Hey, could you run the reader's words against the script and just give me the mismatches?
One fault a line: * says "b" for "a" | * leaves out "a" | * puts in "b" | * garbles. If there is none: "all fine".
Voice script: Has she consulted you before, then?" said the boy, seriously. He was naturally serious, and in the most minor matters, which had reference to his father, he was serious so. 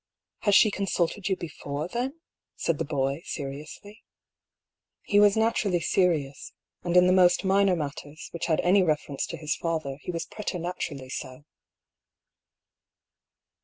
* puts in "any"
* says "preternaturally" for "serious"